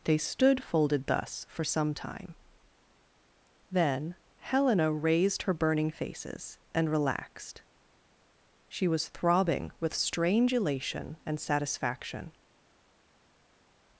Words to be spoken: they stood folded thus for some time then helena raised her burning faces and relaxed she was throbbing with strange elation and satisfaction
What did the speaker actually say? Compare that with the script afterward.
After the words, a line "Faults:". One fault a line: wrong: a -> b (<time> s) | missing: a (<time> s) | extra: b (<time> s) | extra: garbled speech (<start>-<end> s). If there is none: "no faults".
they stood folded thus for some time then helena raised her burning faces and relaxed she was throbbing with strange elation and satisfaction
Faults:
no faults